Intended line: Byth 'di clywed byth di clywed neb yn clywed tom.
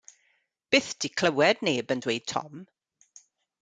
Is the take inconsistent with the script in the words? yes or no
yes